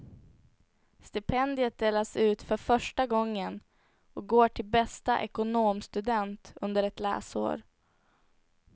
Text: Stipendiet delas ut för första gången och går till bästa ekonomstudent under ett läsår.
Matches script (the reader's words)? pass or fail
pass